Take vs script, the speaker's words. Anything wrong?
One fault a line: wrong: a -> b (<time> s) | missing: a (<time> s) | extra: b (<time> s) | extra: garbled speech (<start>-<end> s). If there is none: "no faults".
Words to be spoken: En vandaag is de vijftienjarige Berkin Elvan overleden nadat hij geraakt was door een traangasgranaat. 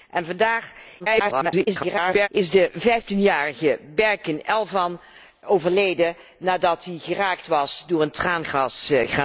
extra: garbled speech (1.0-2.3 s)